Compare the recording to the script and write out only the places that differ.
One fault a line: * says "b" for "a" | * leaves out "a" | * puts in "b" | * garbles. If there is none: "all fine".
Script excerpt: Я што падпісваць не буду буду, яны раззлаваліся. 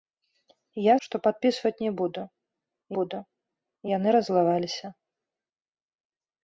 all fine